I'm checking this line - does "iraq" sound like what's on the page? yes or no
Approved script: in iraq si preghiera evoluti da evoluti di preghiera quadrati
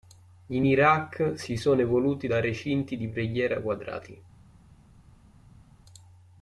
yes